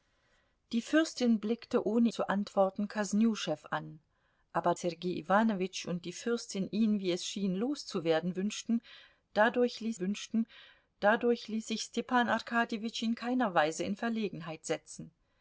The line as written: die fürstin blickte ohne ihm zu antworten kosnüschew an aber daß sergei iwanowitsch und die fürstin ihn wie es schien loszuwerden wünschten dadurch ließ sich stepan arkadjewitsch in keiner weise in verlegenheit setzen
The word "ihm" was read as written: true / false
false